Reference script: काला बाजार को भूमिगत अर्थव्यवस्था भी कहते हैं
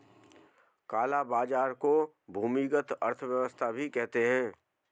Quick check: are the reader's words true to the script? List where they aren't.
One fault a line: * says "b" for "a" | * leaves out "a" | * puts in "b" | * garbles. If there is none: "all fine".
all fine